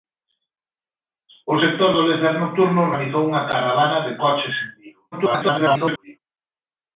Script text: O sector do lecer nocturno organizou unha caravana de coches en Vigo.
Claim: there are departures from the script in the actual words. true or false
true